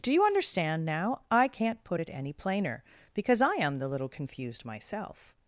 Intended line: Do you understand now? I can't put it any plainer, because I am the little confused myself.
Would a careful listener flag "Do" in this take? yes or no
no